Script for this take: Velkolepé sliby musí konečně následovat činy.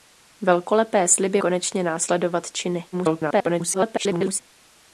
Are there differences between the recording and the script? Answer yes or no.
yes